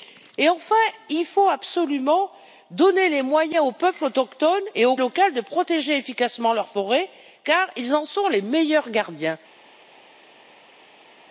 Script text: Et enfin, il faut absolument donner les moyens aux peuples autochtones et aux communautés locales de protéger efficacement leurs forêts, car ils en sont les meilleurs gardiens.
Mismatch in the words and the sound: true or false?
true